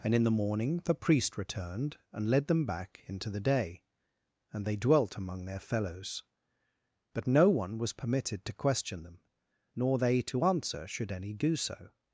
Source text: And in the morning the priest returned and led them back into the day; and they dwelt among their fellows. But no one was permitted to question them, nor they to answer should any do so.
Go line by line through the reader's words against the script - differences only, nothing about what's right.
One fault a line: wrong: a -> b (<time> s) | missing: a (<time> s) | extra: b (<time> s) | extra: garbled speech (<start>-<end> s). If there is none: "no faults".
no faults